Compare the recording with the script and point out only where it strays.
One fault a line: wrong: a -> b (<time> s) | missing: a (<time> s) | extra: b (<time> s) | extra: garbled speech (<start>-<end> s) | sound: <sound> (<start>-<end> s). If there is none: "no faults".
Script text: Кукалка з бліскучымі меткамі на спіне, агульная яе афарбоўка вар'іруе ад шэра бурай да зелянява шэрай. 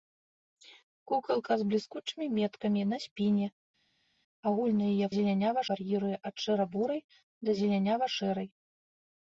wrong: афарбоўка -> зелянява (5.2 s)